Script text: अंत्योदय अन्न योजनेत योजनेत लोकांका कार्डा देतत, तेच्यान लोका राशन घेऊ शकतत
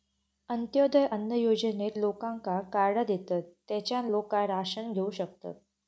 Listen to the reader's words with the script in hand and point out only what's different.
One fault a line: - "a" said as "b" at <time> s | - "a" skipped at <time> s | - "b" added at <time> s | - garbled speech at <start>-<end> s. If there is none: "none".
- "योजनेत" skipped at 2.0 s